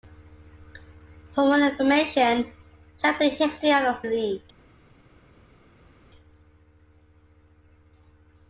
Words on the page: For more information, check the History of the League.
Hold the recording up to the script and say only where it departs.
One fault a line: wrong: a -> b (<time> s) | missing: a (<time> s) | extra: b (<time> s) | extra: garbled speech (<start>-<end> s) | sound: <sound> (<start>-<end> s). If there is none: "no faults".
no faults